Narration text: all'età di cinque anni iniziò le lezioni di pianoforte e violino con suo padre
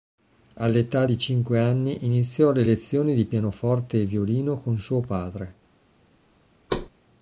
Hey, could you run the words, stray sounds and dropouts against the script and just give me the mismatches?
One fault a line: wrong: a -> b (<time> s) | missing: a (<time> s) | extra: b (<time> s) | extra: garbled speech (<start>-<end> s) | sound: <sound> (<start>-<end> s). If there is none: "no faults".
sound: thud (6.7-6.9 s)